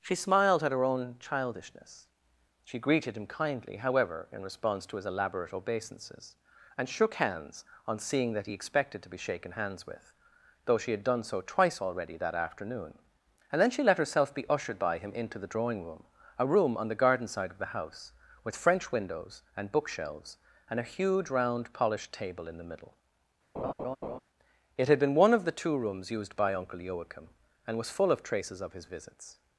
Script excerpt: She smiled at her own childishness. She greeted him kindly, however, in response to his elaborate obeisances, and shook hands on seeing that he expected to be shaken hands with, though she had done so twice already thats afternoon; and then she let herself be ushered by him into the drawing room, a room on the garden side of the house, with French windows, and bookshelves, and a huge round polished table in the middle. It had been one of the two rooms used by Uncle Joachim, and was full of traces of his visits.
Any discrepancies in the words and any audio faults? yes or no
yes